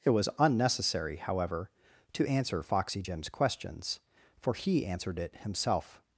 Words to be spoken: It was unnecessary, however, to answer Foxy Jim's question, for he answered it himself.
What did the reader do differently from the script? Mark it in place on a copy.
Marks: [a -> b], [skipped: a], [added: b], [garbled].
It was unnecessary, however, to answer Foxy Jim's [question, -> questions] for he answered it himself.